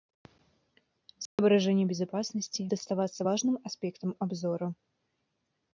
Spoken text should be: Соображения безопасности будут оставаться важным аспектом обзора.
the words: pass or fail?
fail